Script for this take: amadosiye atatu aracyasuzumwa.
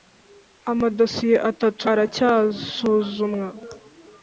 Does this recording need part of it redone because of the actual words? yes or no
no